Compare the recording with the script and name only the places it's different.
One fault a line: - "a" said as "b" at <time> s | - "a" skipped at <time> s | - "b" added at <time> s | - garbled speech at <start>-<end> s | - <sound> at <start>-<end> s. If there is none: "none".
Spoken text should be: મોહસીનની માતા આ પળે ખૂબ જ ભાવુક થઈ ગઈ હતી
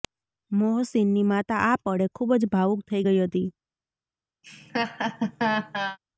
- laugh at 4.4-6.0 s